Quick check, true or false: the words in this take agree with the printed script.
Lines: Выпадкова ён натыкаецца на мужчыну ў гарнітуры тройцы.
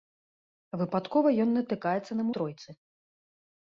false